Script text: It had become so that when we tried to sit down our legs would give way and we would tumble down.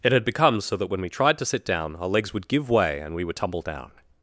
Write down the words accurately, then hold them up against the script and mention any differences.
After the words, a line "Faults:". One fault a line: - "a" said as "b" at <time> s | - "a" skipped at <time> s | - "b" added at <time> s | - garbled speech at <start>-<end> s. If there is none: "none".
It had become so that when we tried to sit down our legs would give way and we would tumble down.
Faults:
none